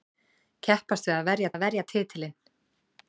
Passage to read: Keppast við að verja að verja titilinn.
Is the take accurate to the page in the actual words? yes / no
yes